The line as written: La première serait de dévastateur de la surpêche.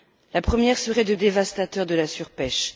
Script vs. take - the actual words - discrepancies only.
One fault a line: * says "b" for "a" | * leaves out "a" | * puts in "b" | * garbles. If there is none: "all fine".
all fine